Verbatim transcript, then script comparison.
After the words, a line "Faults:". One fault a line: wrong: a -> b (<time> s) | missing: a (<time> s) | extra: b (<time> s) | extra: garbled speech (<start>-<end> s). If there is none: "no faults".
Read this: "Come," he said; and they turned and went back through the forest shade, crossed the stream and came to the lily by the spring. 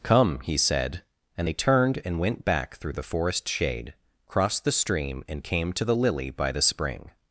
"Come," he said; and they turned and went back through the forest shade, crossed the stream and came to the lily by the spring.
Faults:
no faults